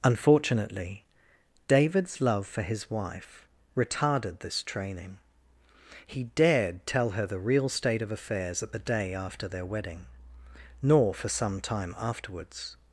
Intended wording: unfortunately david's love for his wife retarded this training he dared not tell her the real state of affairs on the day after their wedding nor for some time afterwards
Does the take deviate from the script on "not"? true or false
true